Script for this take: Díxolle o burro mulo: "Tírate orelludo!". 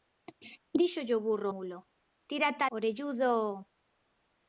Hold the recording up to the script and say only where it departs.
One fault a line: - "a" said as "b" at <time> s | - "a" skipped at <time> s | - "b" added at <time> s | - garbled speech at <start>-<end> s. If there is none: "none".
none